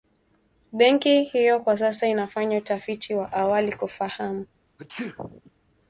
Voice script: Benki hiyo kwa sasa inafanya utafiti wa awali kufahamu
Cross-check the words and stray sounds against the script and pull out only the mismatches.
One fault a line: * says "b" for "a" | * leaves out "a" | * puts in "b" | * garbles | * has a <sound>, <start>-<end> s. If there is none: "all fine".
* has a sneeze, 4.8-5.5 s